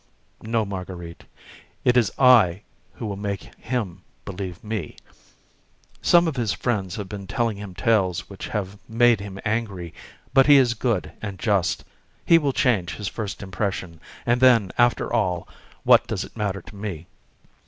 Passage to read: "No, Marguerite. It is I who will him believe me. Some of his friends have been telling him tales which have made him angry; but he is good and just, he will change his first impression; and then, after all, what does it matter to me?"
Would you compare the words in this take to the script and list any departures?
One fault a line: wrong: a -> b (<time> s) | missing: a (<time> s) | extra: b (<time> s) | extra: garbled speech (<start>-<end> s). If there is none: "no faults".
extra: make (3.2 s)